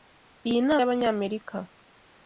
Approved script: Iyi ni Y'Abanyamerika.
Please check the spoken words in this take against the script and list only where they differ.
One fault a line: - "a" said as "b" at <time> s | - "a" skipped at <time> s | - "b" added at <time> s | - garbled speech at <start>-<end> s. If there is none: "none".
none